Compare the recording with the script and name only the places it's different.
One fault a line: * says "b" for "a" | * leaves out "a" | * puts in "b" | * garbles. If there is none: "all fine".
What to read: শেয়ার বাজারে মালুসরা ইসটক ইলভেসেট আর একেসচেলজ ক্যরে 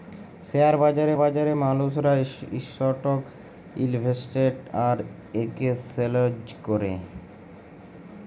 * puts in "বাজারে"